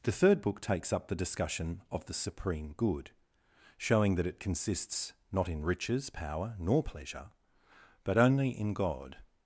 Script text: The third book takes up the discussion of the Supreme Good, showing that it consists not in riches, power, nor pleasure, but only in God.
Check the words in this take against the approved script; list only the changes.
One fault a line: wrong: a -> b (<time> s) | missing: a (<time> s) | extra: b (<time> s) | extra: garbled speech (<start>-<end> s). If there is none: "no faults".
no faults